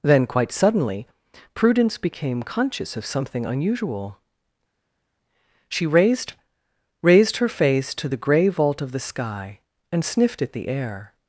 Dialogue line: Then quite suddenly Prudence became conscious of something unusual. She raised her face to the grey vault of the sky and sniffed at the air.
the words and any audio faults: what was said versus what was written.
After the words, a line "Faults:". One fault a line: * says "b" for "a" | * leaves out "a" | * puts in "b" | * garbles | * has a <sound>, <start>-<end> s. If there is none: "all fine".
Then quite suddenly Prudence became conscious of something unusual. She raised raised her face to the grey vault of the sky and sniffed at the air.
Faults:
* puts in "raised"